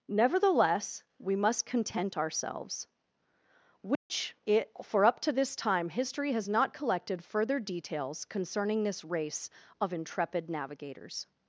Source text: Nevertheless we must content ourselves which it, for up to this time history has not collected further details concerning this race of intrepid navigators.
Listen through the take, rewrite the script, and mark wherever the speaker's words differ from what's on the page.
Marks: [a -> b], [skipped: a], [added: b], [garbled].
Nevertheless we must content ourselves which it, for up to this time history has not collected further details concerning this race of intrepid navigators.